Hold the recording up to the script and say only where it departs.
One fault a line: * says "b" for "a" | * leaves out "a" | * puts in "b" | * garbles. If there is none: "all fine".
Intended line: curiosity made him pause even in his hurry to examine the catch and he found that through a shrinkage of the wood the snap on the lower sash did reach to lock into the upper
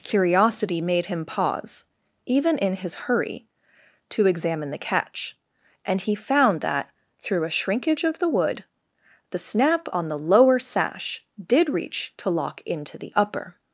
all fine